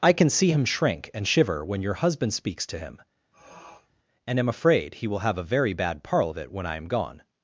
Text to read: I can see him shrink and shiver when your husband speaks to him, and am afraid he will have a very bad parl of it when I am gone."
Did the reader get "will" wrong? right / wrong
right